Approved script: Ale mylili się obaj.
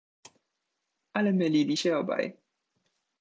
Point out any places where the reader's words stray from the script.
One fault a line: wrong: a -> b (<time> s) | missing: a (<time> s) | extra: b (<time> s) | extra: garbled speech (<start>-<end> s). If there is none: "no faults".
no faults